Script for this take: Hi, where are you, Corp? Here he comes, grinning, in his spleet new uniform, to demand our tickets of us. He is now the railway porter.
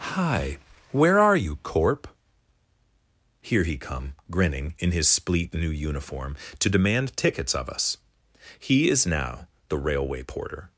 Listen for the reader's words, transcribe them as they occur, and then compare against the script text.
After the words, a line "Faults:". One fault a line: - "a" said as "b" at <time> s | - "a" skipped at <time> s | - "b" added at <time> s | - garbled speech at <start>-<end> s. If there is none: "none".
Hi, where are you, Corp? Here he come, grinning, in his spleet new uniform, to demand tickets of us. He is now the railway porter.
Faults:
- "comes" said as "come" at 3.8 s
- "our" skipped at 7.2 s